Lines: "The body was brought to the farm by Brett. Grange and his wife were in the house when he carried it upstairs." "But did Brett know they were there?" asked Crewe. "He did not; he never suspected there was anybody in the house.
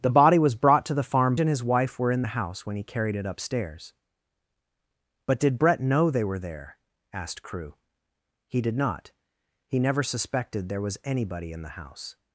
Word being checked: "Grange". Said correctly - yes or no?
no